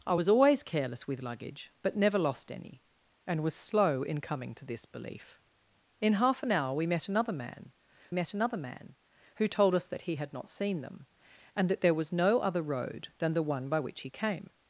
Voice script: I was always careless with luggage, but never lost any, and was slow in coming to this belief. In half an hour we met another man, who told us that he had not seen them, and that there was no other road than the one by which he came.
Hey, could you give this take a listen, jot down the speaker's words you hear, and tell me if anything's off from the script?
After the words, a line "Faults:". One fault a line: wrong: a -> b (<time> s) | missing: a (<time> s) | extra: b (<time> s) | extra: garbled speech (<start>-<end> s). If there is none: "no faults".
I was always careless with luggage, but never lost any, and was slow in coming to this belief. In half an hour we met another man met another man, who told us that he had not seen them, and that there was no other road than the one by which he came.
Faults:
extra: met another man (8.1 s)